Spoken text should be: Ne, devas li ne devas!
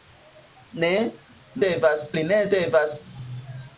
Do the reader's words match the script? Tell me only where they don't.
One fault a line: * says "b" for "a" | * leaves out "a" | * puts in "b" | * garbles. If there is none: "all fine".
all fine